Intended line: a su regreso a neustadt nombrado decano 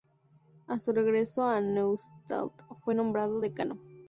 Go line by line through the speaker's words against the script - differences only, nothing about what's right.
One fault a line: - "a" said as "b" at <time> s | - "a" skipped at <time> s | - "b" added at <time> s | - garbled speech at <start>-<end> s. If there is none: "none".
- "fue" added at 2.7 s